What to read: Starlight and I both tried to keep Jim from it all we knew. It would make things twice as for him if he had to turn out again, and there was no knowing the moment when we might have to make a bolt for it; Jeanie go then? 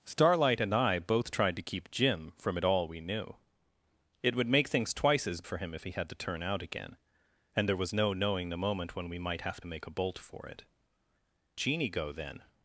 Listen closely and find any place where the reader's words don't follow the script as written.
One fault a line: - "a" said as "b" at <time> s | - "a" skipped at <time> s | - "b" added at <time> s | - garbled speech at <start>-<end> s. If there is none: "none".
none